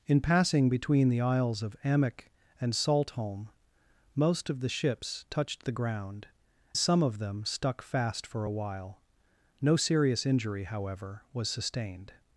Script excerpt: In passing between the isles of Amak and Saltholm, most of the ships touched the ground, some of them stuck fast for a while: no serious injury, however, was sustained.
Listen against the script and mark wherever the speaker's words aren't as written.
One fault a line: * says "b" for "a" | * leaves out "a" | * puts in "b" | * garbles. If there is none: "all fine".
all fine